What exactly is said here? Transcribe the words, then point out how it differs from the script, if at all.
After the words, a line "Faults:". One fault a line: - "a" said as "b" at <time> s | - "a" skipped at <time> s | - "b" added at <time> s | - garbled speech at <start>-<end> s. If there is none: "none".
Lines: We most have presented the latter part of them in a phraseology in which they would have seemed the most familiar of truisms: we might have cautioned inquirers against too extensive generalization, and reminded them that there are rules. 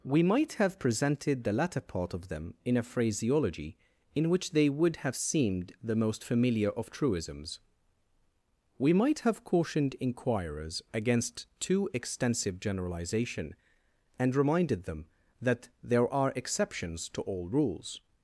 We might have presented the latter part of them in a phraseology in which they would have seemed the most familiar of truisms: we might have cautioned inquirers against too extensive generalization, and reminded them that there are exceptions to all rules.
Faults:
- "most" said as "might" at 0.2 s
- "exceptions to all" added at 16.3 s